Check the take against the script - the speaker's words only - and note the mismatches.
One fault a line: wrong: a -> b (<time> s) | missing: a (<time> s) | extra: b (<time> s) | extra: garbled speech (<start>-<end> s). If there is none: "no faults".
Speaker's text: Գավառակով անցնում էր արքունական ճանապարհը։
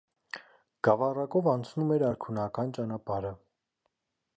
no faults